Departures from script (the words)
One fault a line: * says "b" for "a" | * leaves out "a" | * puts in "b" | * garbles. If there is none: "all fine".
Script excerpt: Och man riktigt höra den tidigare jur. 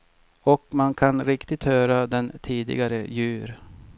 * puts in "kan"